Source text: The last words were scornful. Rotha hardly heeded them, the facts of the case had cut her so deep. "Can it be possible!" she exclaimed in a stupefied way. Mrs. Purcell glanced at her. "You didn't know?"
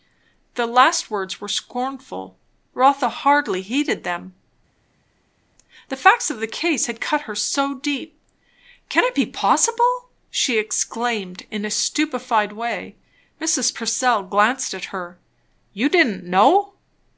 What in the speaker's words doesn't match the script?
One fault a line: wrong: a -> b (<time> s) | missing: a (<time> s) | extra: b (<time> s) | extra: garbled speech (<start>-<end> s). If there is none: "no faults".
no faults